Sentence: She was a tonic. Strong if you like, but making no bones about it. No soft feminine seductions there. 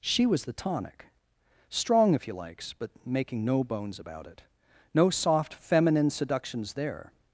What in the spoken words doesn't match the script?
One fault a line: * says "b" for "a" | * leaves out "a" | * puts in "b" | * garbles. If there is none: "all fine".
* says "the" for "a"
* says "likes" for "like"